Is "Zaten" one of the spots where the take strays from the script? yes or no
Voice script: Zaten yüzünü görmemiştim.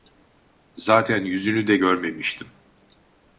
no